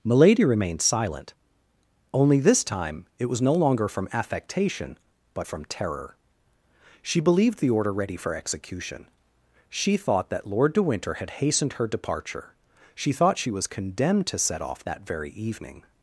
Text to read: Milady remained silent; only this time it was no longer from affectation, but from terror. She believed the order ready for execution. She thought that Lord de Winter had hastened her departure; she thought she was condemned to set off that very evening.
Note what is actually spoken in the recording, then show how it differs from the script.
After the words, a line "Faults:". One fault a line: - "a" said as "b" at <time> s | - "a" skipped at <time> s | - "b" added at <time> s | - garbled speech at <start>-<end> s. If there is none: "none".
Milady remained silent; only this time it was no longer from affectation, but from terror. She believed the order ready for execution. She thought that Lord de Winter had hastened her departure; she thought she was condemned to set off that very evening.
Faults:
none